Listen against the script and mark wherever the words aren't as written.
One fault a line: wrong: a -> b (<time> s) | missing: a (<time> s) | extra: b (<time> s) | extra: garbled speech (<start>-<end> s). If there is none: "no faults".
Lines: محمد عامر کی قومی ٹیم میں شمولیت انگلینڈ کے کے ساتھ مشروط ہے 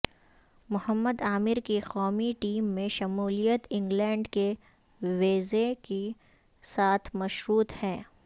extra: ویزے (5.0 s)